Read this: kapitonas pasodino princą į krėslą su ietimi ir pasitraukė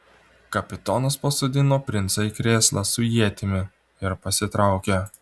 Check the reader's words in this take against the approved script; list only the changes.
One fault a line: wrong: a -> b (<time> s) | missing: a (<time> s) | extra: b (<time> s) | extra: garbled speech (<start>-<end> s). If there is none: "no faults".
no faults